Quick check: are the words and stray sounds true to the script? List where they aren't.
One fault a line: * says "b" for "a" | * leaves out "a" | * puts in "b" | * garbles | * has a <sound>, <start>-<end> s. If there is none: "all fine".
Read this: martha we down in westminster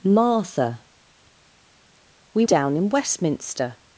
all fine